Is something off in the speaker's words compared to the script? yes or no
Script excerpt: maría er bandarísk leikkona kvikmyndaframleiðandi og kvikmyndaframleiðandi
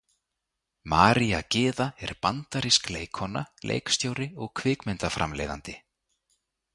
yes